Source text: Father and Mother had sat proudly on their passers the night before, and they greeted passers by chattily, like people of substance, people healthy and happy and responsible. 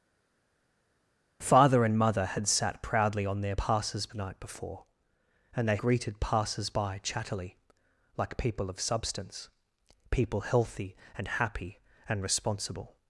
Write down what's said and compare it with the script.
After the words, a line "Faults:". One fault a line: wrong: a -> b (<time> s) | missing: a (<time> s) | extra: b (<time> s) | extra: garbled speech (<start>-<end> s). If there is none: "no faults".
Father and Mother had sat proudly on their passers the night before, and they greeted passers by chattily, like people of substance, people healthy and happy and responsible.
Faults:
no faults